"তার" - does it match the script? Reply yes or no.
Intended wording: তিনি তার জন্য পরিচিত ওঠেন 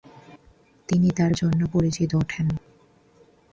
yes